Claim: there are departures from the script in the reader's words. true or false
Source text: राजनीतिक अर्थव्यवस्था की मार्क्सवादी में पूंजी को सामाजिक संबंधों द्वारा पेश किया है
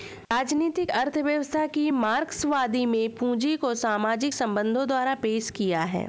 false